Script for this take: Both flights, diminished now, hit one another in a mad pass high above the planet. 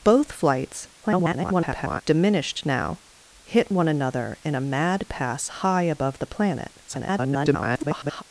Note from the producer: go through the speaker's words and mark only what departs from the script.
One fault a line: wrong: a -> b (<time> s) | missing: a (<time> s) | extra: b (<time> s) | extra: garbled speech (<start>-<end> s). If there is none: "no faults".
extra: garbled speech (1.0-2.0 s)
extra: garbled speech (6.9-8.2 s)